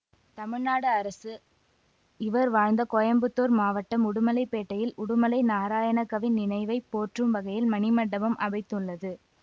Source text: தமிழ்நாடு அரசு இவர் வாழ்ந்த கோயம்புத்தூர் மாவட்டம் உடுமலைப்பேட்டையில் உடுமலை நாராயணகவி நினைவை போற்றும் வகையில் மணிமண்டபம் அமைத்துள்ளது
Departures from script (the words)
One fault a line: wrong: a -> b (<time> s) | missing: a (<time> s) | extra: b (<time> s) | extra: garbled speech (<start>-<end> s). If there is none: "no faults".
no faults